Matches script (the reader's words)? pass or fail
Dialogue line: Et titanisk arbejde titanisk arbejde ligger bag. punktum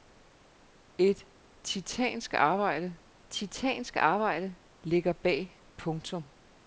pass